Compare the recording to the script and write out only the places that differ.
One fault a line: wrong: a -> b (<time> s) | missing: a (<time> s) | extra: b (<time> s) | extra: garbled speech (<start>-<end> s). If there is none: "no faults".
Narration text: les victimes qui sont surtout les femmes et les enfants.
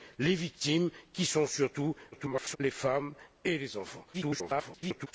extra: garbled speech (2.1-2.6 s)
extra: garbled speech (4.1-5.1 s)